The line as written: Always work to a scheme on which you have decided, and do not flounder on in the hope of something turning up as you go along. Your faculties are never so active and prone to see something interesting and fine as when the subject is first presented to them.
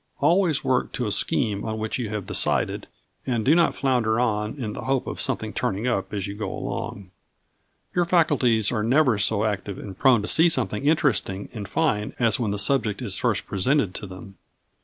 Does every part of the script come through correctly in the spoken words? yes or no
yes